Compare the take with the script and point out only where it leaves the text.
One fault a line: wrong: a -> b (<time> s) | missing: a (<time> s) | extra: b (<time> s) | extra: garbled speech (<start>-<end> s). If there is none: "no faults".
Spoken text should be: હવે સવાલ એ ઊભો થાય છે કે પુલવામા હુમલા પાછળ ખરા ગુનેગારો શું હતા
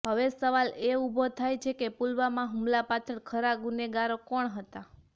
wrong: શું -> કોણ (4.3 s)